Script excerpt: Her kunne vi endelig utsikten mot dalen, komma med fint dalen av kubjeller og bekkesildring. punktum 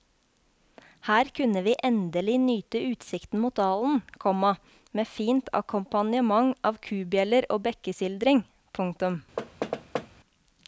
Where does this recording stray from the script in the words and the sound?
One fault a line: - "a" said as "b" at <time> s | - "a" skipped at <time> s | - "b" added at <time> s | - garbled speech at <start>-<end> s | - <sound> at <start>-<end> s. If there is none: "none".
- "nyte" added at 2.5 s
- "dalen" said as "akkompagnement" at 5.6 s
- thud at 9.4-10.1 s